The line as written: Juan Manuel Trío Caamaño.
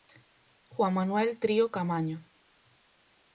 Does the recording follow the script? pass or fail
pass